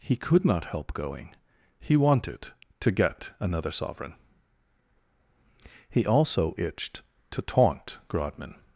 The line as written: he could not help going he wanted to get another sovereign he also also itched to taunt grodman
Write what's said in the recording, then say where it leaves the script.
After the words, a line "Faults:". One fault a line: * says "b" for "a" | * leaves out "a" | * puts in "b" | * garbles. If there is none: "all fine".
he could not help going he wanted to get another sovereign he also itched to taunt grodman
Faults:
* leaves out "also"